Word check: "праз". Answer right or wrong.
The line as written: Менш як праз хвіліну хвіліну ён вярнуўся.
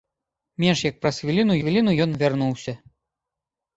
right